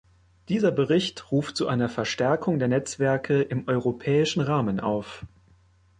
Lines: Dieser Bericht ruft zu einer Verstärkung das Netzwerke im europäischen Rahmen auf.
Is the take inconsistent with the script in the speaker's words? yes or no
yes